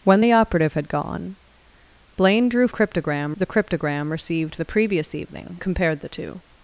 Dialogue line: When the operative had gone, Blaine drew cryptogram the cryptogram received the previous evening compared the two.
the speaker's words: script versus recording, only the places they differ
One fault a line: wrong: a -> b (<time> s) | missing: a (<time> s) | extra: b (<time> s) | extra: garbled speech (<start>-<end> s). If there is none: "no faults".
no faults